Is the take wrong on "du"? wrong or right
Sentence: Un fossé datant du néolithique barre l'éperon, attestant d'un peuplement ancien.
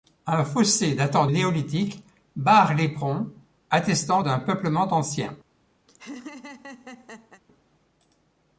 wrong